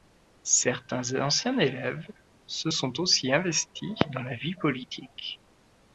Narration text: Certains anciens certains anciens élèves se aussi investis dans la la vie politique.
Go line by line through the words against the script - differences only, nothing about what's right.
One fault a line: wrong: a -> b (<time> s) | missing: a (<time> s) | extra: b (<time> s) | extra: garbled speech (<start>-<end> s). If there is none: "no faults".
missing: certains anciens (1.6 s)
extra: sont (2.7 s)
missing: la (4.3 s)